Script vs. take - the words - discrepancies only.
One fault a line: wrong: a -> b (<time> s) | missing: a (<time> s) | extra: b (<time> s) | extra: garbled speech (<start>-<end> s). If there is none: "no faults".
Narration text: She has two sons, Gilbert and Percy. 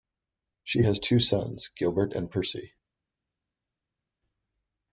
no faults